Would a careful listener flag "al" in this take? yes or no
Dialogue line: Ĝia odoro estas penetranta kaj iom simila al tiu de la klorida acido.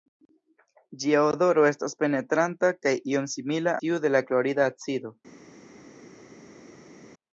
yes